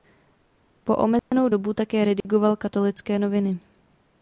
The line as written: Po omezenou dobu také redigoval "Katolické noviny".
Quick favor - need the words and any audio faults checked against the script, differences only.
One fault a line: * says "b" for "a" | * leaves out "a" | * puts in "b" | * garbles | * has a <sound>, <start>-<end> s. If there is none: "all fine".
* has a dropout, 1.2-1.3 s
* has a dropout, 2.2-2.2 s